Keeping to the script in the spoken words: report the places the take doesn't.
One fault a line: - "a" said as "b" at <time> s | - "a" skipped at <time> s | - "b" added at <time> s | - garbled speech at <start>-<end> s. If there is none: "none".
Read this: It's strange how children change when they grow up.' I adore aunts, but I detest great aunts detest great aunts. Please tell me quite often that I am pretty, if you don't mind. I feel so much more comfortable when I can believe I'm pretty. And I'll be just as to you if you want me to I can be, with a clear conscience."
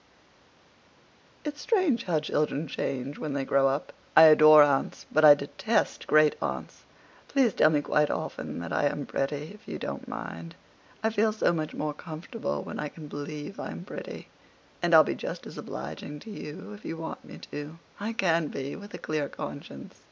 - "detest great aunts" skipped at 6.8 s
- "obliging" added at 15.6 s